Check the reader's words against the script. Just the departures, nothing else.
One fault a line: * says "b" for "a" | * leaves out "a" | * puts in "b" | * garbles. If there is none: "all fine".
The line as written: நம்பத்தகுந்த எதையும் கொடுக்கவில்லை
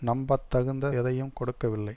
all fine